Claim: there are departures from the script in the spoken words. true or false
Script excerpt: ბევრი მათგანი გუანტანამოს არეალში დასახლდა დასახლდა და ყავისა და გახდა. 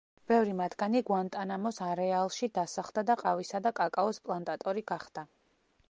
true